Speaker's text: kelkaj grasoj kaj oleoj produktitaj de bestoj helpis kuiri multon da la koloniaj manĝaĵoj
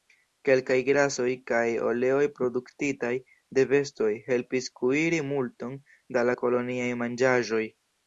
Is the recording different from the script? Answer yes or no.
no